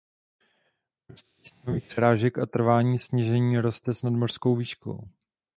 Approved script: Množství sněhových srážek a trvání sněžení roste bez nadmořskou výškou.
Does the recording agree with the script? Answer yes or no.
no